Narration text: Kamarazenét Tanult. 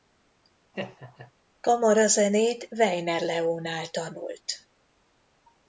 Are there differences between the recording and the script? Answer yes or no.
yes